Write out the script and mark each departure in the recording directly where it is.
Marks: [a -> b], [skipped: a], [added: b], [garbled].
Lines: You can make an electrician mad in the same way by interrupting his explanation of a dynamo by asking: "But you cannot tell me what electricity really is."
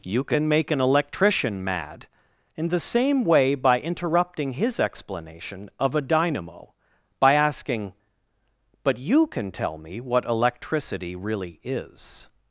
You can make an electrician mad in the same way by interrupting his explanation of a dynamo by asking: "But you [cannot -> can] tell me what electricity really is."